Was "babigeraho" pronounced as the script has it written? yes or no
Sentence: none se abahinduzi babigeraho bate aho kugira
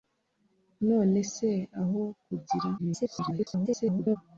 no